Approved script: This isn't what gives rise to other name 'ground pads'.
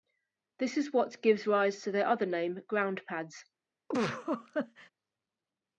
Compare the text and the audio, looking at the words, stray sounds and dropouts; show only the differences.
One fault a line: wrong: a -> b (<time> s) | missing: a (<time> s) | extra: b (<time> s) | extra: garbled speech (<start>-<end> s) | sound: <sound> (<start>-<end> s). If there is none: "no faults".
wrong: isn't -> is (0.8 s)
extra: their (1.9 s)
sound: laugh (3.9-4.9 s)